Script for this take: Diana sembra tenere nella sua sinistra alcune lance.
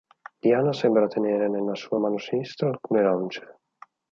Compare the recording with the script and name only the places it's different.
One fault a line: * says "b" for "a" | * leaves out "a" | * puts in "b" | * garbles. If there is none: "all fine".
* puts in "mano"